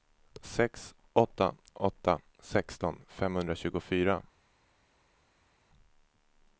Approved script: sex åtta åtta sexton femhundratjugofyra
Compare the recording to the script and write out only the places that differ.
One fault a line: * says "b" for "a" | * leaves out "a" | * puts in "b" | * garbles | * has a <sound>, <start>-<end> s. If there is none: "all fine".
all fine